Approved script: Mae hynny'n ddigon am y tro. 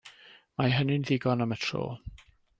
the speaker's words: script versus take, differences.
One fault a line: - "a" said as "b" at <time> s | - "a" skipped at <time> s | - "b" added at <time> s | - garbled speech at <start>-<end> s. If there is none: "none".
none